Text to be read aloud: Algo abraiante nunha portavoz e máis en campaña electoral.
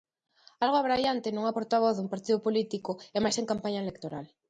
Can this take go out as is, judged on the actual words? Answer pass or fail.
fail